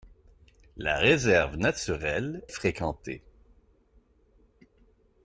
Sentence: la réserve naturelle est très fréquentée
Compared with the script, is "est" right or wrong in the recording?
wrong